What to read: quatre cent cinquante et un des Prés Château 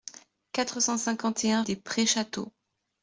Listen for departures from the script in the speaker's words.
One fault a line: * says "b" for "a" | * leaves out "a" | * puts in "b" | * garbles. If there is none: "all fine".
all fine